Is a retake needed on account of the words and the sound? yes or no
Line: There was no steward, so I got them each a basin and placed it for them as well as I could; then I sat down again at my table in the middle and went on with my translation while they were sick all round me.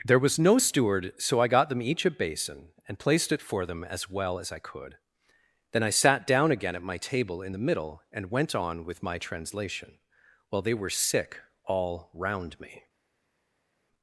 no